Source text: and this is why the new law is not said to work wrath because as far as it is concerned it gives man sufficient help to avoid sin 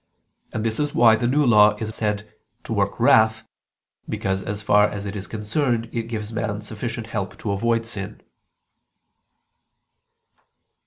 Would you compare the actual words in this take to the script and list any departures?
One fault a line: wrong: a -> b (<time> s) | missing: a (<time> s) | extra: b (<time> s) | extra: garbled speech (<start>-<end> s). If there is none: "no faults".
missing: not (1.9 s)